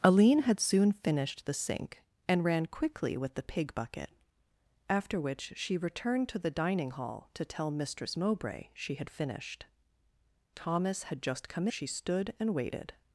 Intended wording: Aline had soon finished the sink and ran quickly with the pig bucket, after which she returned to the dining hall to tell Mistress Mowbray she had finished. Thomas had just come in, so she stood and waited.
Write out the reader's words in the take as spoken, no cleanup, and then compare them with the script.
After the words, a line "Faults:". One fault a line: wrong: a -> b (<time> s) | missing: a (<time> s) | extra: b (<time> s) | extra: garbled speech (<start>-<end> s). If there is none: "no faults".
Aline had soon finished the sink and ran quickly with the pig bucket, after which she returned to the dining hall to tell Mistress Mowbray she had finished. Thomas had just come she stood and waited.
Faults:
missing: in so (11.7 s)